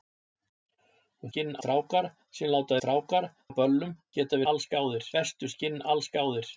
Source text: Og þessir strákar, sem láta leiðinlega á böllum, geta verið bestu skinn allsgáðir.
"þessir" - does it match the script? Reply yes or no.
no